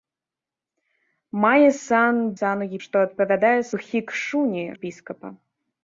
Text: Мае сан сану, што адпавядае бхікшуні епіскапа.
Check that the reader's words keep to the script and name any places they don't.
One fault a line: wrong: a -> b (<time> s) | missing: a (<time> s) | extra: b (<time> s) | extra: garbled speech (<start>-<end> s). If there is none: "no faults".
no faults